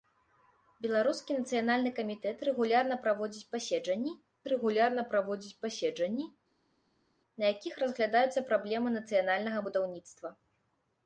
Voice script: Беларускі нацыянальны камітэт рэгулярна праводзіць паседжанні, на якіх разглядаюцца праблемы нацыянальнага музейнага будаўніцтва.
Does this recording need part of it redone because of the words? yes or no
yes